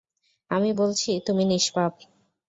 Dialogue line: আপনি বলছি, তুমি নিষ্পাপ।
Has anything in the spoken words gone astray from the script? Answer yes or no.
yes